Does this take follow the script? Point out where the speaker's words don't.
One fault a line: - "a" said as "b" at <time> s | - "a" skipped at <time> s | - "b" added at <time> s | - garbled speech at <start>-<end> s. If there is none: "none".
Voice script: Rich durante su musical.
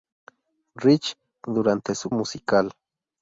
none